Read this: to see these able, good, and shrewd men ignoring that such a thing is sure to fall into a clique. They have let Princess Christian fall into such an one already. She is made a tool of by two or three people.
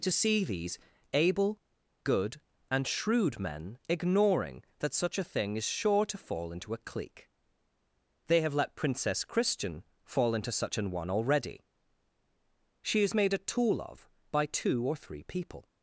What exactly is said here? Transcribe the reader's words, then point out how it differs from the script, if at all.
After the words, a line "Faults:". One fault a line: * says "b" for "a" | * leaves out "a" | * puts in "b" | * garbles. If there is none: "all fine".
to see these able, good, and shrewd men ignoring that such a thing is sure to fall into a clique. They have let Princess Christian fall into such an one already. She is made a tool of by two or three people.
Faults:
all fine